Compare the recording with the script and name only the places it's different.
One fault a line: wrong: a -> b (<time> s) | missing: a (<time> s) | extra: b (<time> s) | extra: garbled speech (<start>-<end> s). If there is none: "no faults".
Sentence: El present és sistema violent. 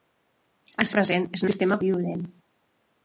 no faults